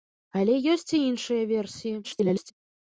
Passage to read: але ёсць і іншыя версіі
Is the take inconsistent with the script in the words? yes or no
yes